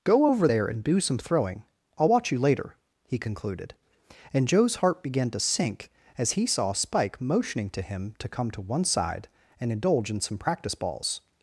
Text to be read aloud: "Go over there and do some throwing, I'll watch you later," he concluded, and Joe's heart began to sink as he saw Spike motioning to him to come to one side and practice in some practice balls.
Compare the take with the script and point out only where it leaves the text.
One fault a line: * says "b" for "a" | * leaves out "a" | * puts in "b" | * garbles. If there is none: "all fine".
* says "indulge" for "practice"